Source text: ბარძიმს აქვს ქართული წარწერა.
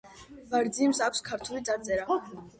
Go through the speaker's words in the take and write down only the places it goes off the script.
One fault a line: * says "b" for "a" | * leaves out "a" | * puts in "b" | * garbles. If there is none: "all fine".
all fine